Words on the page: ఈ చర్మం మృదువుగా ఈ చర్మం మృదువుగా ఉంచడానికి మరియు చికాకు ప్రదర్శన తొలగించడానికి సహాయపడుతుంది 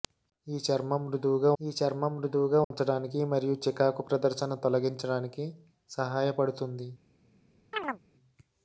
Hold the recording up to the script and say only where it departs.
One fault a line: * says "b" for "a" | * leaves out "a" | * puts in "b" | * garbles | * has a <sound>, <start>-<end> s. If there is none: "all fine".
* has a dropout, 2.6-2.7 s
* has a chirp, 7.7-8.0 s